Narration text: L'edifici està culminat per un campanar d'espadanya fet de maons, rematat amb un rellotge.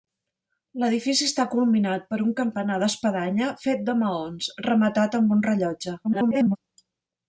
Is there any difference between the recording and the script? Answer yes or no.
yes